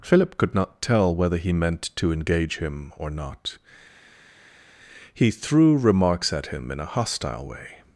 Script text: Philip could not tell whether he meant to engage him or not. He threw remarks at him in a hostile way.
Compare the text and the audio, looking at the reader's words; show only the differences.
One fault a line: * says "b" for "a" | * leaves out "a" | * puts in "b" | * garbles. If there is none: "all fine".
all fine